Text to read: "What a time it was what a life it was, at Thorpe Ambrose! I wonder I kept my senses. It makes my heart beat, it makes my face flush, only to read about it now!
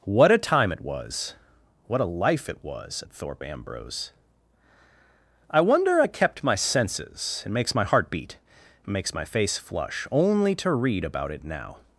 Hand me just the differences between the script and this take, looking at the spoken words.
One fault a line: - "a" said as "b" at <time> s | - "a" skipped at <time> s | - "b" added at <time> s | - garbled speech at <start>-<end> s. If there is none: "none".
none